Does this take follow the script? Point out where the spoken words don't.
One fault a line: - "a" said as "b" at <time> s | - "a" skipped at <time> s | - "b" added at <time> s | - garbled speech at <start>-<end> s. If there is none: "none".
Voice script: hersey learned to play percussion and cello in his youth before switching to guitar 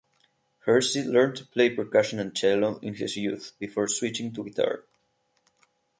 none